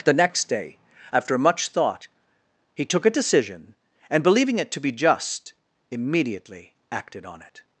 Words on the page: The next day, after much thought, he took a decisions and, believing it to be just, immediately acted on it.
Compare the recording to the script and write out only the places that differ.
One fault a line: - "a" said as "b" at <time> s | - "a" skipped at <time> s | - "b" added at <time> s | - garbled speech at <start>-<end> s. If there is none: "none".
- "decisions" said as "decision" at 3.1 s